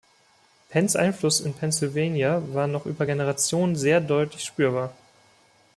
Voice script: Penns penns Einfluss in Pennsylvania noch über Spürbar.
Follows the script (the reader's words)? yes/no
no